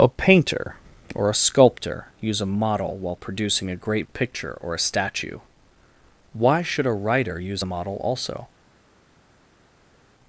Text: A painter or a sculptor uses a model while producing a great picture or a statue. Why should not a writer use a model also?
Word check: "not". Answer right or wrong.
wrong